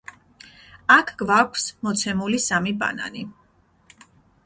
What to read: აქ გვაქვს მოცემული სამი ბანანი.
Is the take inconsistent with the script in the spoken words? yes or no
no